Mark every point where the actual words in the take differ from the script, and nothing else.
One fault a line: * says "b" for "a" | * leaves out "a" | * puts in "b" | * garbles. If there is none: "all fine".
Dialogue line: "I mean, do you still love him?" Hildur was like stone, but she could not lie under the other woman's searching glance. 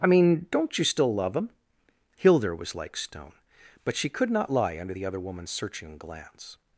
* says "don't" for "do"